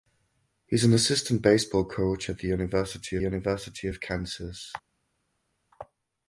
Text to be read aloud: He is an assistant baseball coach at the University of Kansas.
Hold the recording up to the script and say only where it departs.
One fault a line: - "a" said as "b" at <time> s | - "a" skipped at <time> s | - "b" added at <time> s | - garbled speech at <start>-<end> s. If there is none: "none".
- "University" added at 3.2 s